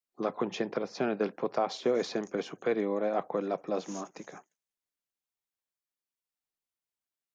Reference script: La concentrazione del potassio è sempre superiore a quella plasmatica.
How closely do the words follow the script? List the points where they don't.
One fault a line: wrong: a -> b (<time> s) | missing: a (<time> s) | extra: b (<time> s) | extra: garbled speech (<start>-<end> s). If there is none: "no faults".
no faults